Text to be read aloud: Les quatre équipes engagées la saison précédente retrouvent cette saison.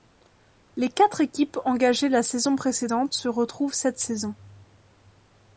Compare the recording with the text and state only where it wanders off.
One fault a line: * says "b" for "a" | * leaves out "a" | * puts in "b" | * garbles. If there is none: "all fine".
* puts in "se"